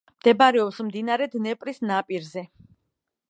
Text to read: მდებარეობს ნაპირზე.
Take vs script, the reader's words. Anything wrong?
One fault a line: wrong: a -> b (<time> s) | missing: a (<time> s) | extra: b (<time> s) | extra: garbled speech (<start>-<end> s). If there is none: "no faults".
extra: მდინარე დნეპრის (0.9 s)